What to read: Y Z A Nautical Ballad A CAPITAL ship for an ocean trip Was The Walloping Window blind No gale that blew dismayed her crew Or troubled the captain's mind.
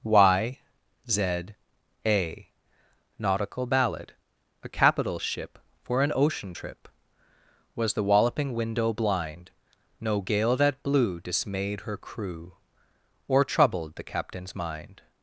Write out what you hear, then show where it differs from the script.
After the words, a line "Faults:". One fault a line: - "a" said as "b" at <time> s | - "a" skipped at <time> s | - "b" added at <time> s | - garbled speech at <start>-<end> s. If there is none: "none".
Y Z A Nautical Ballad A CAPITAL ship for an ocean trip Was The Walloping Window blind No gale that blew dismayed her crew Or troubled the captain's mind.
Faults:
none